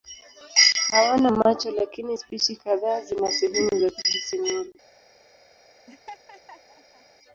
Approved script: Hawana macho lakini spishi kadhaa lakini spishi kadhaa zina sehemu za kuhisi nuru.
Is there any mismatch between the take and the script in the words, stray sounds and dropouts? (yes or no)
yes